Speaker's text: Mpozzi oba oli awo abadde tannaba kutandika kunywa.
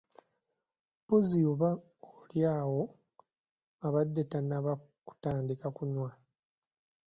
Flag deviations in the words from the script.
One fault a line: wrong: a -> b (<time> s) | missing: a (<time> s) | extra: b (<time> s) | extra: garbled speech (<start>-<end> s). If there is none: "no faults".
no faults